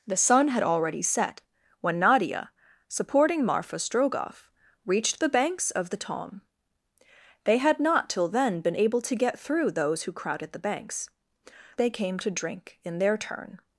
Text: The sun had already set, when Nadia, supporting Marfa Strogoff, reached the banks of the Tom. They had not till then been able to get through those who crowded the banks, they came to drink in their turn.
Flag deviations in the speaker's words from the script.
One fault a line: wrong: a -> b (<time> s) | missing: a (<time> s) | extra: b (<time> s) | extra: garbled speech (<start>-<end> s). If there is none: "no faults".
no faults